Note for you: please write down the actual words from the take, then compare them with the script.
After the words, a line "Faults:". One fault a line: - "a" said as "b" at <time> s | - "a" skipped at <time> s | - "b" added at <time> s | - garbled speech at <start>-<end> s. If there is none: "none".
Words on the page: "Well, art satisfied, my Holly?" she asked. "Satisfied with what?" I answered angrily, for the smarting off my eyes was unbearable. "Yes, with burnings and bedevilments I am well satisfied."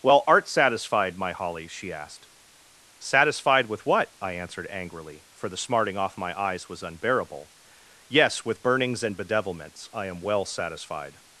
"Well, art satisfied, my Holly?" she asked. "Satisfied with what?" I answered angrily, for the smarting off my eyes was unbearable. "Yes, with burnings and bedevilments I am well satisfied."
Faults:
none